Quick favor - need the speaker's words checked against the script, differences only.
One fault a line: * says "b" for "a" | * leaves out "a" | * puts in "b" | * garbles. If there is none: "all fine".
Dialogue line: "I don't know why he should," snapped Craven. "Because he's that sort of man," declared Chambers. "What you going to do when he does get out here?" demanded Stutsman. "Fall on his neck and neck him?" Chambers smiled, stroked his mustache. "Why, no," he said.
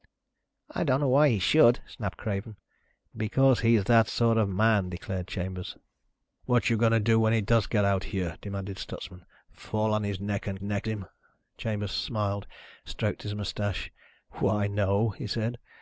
all fine